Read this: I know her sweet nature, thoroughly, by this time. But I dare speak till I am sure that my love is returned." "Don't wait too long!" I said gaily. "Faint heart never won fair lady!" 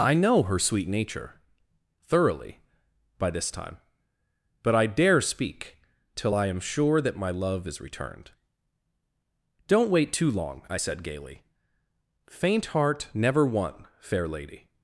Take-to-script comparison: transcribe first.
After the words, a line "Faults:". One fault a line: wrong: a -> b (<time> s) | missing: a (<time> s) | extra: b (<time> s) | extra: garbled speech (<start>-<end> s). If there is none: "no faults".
I know her sweet nature, thoroughly, by this time. But I dare speak till I am sure that my love is returned." "Don't wait too long!" I said gaily. "Faint heart never won fair lady!"
Faults:
no faults